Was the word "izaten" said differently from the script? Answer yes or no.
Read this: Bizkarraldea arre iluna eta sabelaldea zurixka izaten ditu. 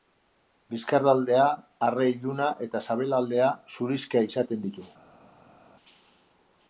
no